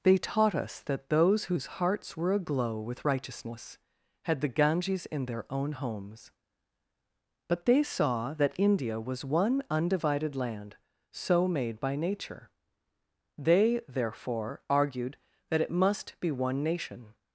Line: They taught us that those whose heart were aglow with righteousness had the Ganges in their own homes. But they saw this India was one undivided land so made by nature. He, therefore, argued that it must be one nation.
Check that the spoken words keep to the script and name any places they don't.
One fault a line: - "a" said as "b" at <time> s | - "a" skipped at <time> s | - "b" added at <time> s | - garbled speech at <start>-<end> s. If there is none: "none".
- "heart" said as "hearts" at 1.8 s
- "this" said as "that" at 8.3 s
- "He" said as "They" at 13.4 s